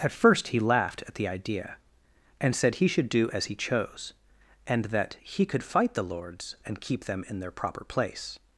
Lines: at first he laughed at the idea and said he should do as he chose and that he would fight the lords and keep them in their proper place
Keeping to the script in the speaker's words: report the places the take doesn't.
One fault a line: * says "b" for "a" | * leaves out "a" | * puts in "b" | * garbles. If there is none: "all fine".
* says "could" for "would"